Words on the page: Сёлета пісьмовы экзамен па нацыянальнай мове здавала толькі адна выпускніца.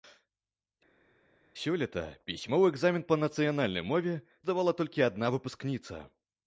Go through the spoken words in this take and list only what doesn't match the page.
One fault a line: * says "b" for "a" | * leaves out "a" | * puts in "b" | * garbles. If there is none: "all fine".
all fine